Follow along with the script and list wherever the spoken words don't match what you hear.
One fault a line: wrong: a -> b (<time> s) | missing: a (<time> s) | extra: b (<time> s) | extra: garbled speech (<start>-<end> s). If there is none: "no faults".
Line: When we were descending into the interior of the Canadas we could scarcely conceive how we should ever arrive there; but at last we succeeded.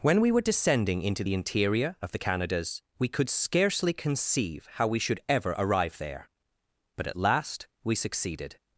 no faults